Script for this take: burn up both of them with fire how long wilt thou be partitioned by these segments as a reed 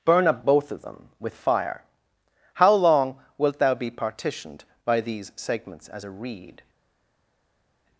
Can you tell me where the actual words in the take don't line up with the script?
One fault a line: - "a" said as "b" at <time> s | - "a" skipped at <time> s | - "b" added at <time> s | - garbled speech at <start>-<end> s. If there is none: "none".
none